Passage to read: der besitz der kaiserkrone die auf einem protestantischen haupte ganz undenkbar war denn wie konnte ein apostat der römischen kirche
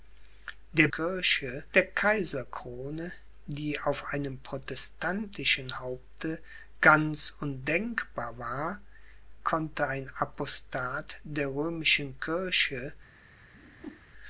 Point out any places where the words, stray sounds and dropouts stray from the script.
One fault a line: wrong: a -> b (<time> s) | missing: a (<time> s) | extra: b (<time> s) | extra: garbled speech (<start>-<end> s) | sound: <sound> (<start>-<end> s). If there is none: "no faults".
wrong: besitz -> kirche (0.9 s)
missing: denn wie (8.8 s)
sound: whoosh (13.5-14.1 s)